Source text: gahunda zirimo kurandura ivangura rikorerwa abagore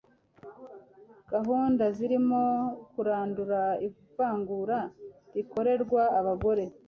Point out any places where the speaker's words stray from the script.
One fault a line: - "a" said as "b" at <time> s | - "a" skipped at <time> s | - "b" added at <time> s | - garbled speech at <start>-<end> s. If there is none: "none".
none